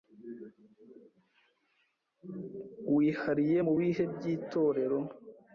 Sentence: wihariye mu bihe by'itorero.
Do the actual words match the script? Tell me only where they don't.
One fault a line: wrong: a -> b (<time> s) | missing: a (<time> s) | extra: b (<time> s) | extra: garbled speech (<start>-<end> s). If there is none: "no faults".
no faults